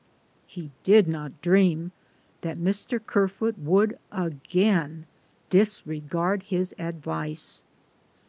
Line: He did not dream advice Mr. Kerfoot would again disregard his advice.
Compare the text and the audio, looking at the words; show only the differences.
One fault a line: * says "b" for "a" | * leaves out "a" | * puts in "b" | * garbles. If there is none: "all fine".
* says "that" for "advice"